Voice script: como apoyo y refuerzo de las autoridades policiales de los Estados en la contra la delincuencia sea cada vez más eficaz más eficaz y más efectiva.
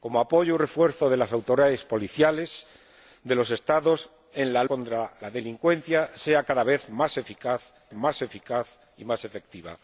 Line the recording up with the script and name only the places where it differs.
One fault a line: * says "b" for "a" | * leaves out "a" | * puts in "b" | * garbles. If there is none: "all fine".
all fine